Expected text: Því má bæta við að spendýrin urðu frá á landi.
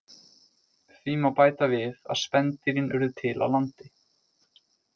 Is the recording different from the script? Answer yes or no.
yes